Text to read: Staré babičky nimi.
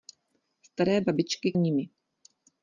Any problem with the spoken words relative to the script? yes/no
no